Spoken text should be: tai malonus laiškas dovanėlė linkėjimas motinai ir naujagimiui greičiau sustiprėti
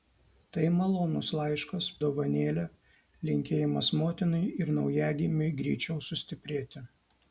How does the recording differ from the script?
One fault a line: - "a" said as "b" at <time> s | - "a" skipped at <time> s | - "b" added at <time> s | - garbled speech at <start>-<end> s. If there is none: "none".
none